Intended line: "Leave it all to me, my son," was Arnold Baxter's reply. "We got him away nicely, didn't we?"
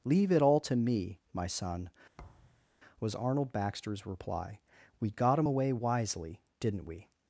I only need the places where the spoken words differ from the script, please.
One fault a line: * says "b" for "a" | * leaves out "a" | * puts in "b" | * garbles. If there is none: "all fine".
* says "wisely" for "nicely"